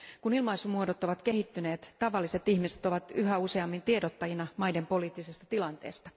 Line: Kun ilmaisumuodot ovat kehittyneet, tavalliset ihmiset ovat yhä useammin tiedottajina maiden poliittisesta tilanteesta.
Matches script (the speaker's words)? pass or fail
pass